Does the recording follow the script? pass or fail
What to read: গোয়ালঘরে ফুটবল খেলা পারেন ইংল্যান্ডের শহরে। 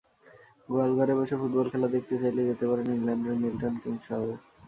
fail